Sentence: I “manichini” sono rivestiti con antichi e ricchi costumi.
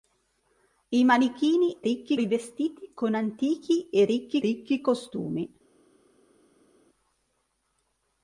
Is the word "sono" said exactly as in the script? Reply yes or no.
no